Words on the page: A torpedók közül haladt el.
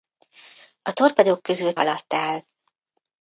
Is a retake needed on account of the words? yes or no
no